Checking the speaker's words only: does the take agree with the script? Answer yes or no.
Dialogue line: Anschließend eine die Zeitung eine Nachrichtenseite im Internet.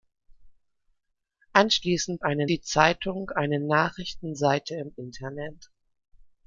yes